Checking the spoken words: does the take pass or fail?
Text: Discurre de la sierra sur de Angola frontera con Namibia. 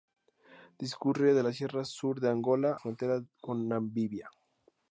pass